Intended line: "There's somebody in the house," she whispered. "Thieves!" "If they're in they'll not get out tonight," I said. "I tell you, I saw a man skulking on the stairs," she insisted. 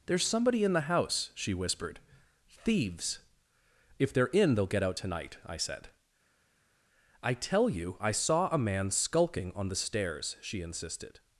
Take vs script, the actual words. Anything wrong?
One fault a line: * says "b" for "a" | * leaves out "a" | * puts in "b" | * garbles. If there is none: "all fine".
* leaves out "not"